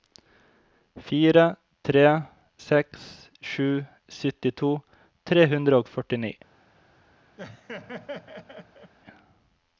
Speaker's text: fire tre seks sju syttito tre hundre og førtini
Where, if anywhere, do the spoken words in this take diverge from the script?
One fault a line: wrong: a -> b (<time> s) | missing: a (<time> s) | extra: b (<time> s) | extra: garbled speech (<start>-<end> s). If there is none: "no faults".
no faults